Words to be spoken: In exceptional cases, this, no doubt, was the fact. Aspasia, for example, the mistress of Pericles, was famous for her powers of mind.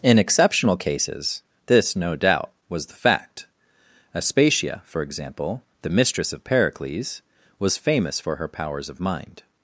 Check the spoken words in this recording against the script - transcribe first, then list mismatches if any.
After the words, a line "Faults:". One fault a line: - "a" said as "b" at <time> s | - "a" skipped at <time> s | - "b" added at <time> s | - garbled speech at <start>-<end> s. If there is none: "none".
In exceptional cases, this, no doubt, was the fact. Aspasia, for example, the mistress of Pericles, was famous for her powers of mind.
Faults:
none